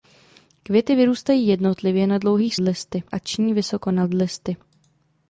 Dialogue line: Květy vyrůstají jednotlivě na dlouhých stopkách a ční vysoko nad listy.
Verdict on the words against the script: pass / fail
fail